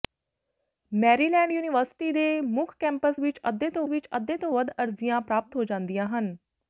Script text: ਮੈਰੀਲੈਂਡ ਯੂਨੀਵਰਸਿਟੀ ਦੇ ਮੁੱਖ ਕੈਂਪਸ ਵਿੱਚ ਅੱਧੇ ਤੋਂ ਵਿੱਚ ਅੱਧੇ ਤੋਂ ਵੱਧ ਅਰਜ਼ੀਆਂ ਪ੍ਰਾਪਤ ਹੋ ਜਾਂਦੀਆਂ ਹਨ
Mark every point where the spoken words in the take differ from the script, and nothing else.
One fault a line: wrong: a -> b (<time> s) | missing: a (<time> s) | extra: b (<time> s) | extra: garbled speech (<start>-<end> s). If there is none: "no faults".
no faults